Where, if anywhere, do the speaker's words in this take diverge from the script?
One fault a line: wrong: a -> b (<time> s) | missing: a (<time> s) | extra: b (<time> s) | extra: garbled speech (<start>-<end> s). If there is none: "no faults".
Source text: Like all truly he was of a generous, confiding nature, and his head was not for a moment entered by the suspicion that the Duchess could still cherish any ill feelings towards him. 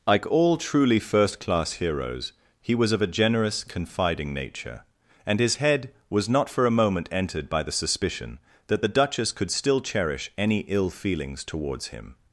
extra: first class heroes (1.0 s)